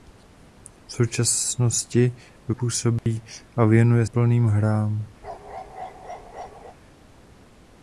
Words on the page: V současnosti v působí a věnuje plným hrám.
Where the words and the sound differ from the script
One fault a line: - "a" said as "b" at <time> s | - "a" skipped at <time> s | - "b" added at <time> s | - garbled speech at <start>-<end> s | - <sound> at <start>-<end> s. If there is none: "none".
- dropout at 3.0-3.1 s
- bark at 5.2-6.8 s